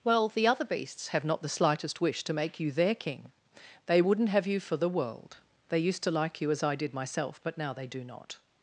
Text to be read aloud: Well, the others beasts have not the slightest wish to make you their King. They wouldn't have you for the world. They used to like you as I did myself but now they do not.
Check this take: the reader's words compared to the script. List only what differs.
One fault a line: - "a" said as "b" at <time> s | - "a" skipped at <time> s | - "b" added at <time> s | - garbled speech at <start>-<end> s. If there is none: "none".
- "others" said as "other" at 0.5 s